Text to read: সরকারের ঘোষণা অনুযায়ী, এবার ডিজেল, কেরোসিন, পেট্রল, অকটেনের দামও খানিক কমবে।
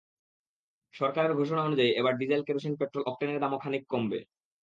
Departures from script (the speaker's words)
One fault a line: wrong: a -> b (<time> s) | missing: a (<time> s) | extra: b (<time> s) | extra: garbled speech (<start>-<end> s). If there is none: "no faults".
no faults